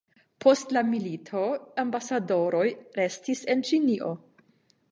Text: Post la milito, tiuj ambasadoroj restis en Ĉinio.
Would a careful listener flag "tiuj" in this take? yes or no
yes